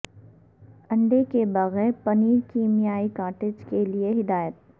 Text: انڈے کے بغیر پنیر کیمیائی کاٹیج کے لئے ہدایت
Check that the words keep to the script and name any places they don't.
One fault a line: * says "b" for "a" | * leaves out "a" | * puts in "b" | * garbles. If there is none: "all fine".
all fine